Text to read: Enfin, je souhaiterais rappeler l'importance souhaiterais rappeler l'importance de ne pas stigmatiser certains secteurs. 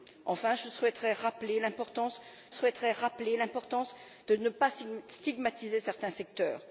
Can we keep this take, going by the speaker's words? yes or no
yes